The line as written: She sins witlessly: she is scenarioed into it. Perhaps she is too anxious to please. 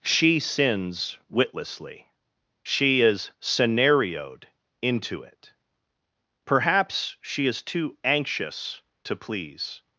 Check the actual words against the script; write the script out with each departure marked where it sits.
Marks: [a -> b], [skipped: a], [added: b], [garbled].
She sins witlessly: she is scenarioed into it. Perhaps she is too anxious to please.